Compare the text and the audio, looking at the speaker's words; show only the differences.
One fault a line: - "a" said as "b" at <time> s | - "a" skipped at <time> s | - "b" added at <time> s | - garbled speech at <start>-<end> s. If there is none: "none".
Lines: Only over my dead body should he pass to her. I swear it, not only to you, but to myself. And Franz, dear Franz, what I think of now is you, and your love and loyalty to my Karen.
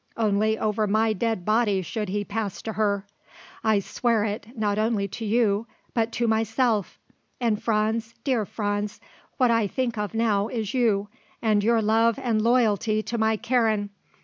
none